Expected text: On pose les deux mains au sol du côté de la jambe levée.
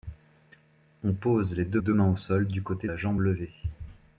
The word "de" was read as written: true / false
false